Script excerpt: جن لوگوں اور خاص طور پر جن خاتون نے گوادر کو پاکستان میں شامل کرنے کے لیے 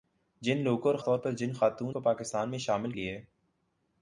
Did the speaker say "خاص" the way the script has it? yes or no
no